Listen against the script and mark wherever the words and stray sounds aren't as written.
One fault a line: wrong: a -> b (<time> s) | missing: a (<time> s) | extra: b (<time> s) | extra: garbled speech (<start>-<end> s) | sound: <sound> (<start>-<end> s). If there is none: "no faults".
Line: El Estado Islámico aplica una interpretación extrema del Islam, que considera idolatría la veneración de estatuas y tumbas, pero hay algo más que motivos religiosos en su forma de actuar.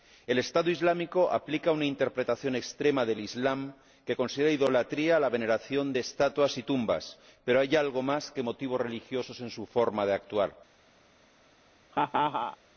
sound: laugh (11.9-12.6 s)